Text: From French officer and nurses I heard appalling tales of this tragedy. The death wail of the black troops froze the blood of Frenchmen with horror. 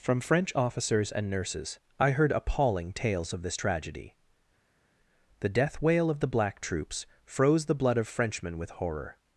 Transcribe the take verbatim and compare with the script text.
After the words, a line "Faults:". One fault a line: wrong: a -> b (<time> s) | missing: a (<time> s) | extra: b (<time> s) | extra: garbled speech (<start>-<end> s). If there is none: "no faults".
From French officers and nurses I heard appalling tales of this tragedy. The death wail of the black troops froze the blood of Frenchmen with horror.
Faults:
wrong: officer -> officers (0.5 s)